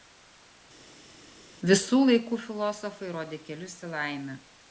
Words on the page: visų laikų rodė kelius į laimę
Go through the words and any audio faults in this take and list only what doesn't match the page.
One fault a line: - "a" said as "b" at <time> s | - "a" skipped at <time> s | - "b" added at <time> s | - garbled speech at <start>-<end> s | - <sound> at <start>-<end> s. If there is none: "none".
- "filosofai" added at 2.5 s